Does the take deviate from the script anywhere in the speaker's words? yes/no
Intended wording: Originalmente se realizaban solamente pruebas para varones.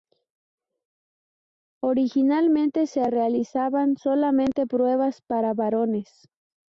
no